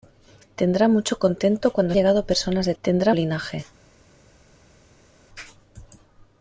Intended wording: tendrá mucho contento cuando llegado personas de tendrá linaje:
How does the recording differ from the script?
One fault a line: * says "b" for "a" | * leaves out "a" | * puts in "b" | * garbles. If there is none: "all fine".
all fine